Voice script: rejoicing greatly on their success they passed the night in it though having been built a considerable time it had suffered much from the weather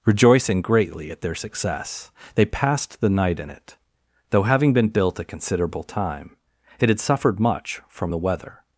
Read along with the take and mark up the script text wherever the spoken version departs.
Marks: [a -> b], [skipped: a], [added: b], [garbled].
rejoicing greatly [on -> at] their success they passed the night in it though having been built a considerable time it had suffered much from the weather